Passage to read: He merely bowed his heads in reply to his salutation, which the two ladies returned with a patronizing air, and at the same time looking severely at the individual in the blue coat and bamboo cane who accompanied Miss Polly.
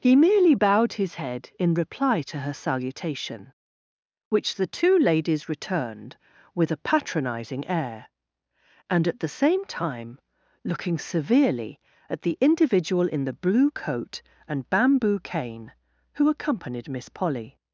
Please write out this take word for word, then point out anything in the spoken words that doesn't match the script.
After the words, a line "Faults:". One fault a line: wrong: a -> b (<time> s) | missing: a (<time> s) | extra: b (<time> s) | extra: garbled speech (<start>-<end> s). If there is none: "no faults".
He merely bowed his head in reply to her salutation, which the two ladies returned with a patronizing air, and at the same time looking severely at the individual in the blue coat and bamboo cane who accompanied Miss Polly.
Faults:
wrong: heads -> head (1.2 s)
wrong: his -> her (2.4 s)